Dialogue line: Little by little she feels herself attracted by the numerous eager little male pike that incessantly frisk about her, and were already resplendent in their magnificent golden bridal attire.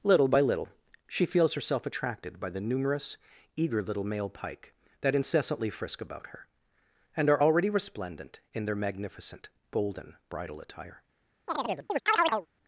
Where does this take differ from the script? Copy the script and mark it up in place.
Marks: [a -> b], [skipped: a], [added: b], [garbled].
Little by little she feels herself attracted by the numerous eager little male pike that incessantly frisk about her, and [were -> are] already resplendent in their magnificent golden bridal attire.